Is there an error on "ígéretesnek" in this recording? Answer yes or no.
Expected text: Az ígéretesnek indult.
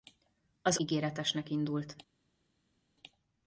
no